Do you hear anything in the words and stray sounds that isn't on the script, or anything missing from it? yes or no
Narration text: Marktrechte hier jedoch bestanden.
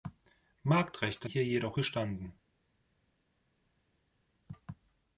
no